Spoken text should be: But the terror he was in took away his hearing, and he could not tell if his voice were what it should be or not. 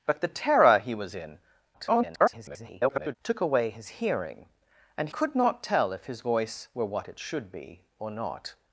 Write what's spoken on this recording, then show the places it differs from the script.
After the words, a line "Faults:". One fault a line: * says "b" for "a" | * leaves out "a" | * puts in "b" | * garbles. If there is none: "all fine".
But the terror he was in [garbled] took away his hearing, and could not tell if his voice were what it should be or not.
Faults:
* garbles
* leaves out "he"